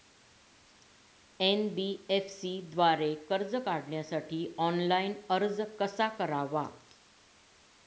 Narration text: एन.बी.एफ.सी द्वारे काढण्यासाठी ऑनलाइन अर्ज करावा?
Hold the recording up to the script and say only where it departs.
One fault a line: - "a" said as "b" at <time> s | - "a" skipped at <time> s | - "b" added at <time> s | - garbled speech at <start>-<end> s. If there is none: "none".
- "कर्ज" added at 3.3 s
- "कसा" added at 5.8 s